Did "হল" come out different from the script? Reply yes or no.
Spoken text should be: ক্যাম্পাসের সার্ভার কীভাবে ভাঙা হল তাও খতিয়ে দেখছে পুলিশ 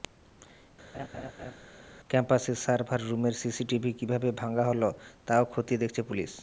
no